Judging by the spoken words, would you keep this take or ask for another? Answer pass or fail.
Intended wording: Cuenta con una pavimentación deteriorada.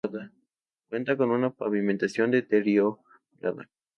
pass